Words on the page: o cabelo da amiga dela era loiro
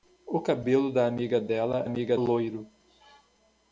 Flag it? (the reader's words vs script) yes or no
yes